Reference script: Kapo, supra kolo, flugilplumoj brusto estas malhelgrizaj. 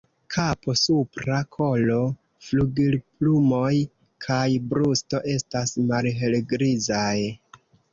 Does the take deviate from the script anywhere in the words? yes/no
yes